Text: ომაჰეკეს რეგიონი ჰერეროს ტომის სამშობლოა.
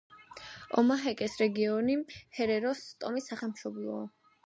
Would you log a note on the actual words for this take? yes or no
no